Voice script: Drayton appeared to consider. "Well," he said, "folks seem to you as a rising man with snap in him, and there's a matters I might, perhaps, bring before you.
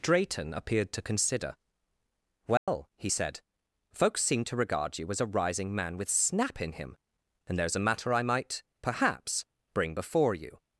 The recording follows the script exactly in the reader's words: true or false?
false